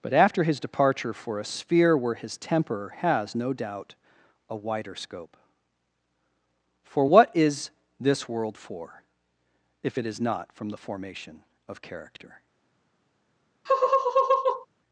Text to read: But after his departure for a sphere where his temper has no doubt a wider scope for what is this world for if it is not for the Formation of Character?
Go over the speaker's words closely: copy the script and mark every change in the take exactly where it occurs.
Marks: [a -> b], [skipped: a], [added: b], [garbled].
But after his departure for a sphere where his temper has no doubt a wider scope for what is this world for if it is not [for -> from] the Formation of Character?